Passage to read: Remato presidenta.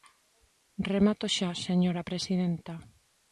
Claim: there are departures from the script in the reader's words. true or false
true